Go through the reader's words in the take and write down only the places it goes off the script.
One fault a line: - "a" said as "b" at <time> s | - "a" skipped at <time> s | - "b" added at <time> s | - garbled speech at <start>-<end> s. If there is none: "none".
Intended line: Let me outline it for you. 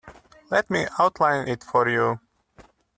none